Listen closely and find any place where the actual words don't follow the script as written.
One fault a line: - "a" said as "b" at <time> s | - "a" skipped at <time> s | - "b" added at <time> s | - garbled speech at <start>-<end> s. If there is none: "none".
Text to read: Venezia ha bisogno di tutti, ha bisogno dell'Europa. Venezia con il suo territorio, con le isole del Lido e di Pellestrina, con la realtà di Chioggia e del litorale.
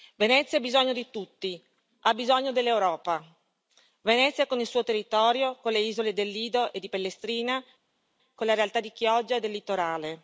none